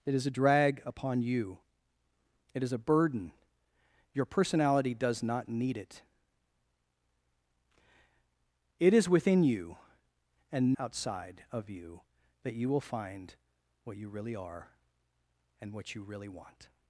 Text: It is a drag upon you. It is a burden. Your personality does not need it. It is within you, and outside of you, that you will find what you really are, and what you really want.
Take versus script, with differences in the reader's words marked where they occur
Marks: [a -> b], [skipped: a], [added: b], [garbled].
It is a drag upon you. It is a burden. Your personality does not need it. It is within you, and outside of you, that you will find what you really are, and what you really want.